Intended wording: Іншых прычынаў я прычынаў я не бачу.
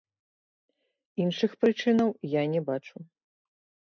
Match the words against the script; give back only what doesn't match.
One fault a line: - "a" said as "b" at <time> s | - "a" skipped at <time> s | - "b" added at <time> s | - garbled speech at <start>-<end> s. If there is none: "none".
- "прычынаў я" skipped at 2.4 s